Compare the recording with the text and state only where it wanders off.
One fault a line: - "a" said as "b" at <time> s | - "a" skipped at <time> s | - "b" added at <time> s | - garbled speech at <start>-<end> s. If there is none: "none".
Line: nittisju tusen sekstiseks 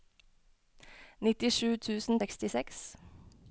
none